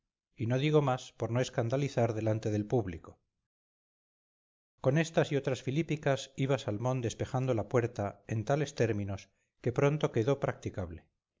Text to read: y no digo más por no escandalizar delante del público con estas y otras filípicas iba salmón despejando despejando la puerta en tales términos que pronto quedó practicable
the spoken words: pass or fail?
fail